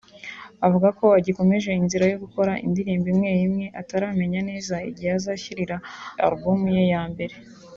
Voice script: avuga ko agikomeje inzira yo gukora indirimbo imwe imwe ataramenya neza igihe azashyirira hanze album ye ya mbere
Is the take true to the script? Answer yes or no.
no